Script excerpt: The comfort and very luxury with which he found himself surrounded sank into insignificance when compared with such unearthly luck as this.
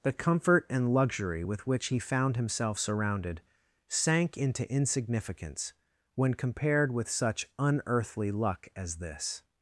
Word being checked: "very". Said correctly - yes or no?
no